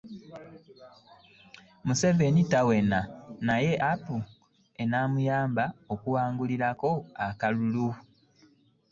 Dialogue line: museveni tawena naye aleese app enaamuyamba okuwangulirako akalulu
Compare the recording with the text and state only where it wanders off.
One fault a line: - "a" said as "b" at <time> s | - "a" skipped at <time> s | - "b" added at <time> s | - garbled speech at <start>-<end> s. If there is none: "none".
- "aleese" skipped at 3.7 s